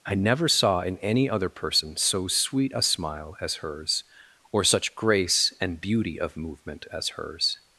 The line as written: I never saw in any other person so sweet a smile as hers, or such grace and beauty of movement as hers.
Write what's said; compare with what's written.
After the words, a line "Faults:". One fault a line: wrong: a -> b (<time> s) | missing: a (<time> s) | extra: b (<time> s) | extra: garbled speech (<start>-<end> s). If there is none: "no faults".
I never saw in any other person so sweet a smile as hers, or such grace and beauty of movement as hers.
Faults:
no faults